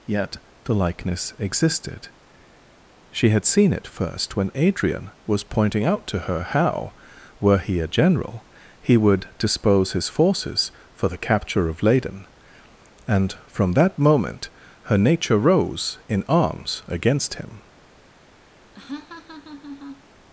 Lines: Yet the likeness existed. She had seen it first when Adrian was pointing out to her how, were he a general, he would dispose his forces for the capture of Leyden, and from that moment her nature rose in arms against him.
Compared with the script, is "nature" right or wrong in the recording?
right